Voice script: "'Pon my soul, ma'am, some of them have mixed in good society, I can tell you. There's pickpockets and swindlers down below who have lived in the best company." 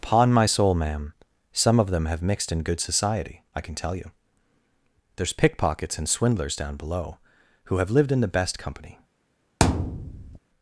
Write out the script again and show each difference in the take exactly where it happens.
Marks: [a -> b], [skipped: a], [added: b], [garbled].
"'Pon my soul, ma'am, some of them have mixed in good society, I can tell you. There's pickpockets and swindlers down below who have lived in the best company."